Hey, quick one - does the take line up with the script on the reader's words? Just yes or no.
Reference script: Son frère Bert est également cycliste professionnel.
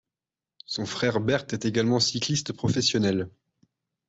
yes